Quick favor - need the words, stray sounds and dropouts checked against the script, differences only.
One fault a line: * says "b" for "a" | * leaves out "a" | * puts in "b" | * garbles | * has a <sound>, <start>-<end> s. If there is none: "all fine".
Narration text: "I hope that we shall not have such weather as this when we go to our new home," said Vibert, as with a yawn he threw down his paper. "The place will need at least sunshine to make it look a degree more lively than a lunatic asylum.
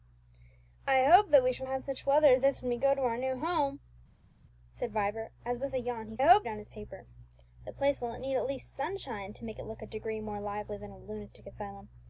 * leaves out "not"
* says "hope" for "threw"